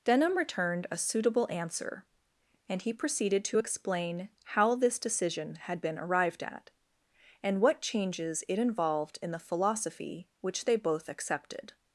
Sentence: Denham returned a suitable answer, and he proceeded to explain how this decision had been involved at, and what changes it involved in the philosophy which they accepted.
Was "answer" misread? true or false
false